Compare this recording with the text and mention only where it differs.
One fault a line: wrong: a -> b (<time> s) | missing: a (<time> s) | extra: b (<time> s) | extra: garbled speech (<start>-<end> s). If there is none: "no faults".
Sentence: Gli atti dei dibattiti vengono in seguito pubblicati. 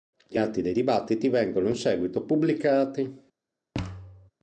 no faults